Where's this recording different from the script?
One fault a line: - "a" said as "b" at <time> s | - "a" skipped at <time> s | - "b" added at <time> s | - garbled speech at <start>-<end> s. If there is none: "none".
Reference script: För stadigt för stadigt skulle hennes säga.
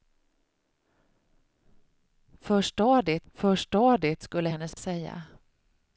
none